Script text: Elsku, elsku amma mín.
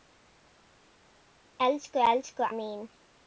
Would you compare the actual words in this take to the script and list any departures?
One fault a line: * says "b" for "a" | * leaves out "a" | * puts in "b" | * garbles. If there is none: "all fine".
* leaves out "amma"